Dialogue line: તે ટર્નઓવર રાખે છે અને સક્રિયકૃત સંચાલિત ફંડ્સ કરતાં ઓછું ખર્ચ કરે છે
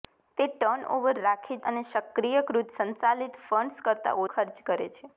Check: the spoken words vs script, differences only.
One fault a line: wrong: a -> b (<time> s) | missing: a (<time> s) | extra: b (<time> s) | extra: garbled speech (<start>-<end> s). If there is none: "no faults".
missing: છે (1.6 s)
missing: ઓછું (4.2 s)